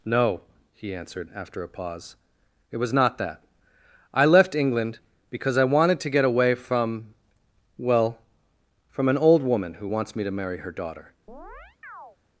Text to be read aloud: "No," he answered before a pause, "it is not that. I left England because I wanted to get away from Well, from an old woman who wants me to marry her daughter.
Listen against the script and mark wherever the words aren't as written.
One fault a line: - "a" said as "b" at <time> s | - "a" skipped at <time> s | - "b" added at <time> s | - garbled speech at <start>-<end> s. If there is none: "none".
- "before" said as "after" at 1.4 s
- "is" said as "was" at 2.8 s